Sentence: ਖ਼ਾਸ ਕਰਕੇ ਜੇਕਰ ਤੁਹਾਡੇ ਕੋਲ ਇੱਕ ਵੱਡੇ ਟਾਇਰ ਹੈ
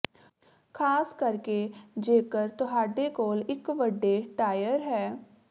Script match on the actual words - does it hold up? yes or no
yes